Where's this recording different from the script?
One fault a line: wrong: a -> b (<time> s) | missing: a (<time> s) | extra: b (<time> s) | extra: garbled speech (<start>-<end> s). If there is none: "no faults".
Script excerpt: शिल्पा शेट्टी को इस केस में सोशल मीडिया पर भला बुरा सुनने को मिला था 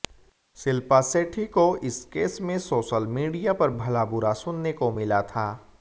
no faults